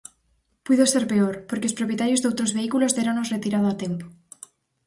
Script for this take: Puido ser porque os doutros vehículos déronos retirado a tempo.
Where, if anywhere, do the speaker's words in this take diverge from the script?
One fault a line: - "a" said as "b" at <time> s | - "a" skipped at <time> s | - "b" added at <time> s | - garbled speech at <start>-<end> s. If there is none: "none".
- "peor" added at 1.1 s
- "propietarios" added at 1.8 s